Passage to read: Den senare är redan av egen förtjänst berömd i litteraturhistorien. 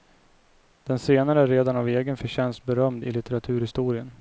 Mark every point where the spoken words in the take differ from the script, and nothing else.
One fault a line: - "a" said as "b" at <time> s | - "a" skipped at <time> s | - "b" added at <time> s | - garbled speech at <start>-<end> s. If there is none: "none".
none